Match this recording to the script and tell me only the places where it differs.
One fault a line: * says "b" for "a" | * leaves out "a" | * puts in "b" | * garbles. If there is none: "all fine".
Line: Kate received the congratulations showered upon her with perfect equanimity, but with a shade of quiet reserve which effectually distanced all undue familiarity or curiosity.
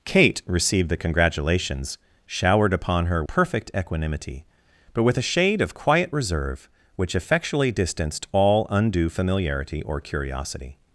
* leaves out "with"